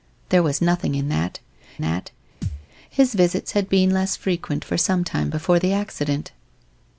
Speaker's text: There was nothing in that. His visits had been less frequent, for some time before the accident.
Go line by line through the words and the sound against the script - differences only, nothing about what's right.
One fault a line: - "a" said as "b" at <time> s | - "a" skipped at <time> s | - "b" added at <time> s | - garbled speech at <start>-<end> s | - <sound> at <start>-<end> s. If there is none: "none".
- "that" added at 1.8 s
- thud at 2.4-2.7 s